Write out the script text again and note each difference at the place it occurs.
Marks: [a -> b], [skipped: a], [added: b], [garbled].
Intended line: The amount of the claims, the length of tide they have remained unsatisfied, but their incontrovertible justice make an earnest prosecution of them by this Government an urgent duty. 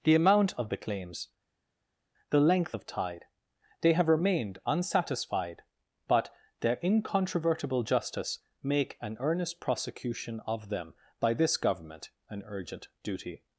The amount of the claims, the length of tide they have remained unsatisfied, but their incontrovertible justice make an earnest prosecution of them by this Government an urgent duty.